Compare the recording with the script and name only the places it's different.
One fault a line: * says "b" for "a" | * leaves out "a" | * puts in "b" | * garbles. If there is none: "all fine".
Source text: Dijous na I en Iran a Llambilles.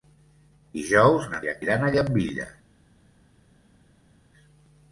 all fine